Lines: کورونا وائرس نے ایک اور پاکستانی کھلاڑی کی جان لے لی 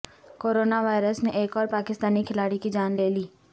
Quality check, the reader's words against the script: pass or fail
pass